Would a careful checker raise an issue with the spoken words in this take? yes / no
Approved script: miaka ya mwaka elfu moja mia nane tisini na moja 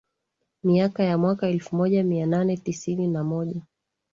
no